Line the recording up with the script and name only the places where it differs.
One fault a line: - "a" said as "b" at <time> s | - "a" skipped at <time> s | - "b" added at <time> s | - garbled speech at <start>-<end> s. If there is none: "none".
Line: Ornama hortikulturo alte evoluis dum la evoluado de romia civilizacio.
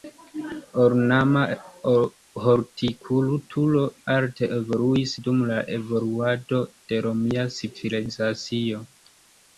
none